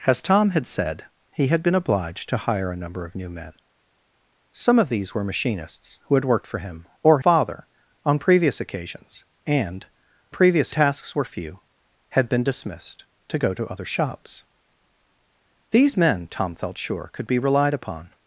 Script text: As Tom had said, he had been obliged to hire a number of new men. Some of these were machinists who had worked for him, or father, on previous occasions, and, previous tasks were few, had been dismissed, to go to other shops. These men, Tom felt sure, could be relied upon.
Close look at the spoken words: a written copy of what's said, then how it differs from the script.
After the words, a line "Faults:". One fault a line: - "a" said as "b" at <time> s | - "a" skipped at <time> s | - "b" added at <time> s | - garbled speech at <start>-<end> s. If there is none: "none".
As Tom had said, he had been obliged to hire a number of new men. Some of these were machinists who had worked for him, or father, on previous occasions, and, previous tasks were few, had been dismissed, to go to other shops. These men, Tom felt sure, could be relied upon.
Faults:
none